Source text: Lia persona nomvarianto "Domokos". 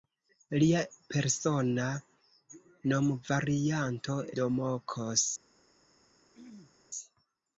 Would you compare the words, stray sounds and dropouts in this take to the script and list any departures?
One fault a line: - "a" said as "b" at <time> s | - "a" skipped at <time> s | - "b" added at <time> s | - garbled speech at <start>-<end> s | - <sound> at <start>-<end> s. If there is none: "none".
- throat clearing at 6.3-6.8 s